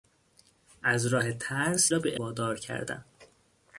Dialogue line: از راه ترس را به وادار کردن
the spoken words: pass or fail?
pass